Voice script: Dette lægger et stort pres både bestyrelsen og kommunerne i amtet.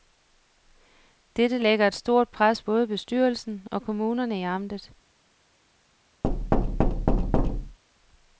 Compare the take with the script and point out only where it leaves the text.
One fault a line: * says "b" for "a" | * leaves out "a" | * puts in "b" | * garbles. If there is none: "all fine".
all fine